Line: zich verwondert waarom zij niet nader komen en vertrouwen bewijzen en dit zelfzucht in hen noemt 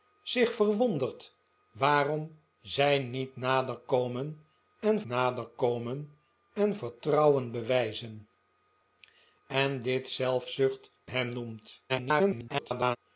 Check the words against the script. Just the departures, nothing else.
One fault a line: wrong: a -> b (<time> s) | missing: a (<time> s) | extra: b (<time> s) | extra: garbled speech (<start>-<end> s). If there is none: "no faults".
extra: nader komen en (5.0 s)
missing: in (10.9 s)
extra: garbled speech (11.9-13.0 s)